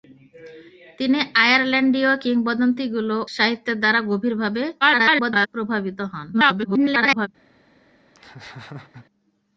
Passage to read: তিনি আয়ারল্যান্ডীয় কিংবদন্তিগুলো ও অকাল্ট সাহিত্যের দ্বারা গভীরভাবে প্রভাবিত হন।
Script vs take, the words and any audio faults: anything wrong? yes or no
yes